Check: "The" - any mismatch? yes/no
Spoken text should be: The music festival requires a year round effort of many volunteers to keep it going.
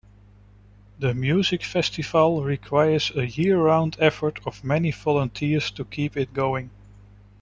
no